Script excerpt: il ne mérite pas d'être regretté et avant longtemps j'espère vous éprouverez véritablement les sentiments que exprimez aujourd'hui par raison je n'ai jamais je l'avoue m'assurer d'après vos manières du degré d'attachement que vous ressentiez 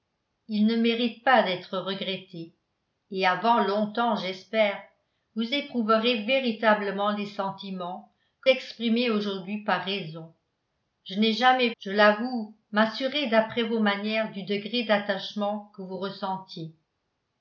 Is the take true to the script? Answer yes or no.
yes